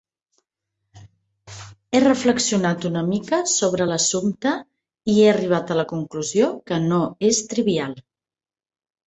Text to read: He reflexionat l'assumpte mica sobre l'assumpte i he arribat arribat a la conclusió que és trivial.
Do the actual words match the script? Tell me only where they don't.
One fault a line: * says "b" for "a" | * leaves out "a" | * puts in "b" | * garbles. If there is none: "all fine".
* says "una" for "l'assumpte"
* leaves out "arribat"
* puts in "no"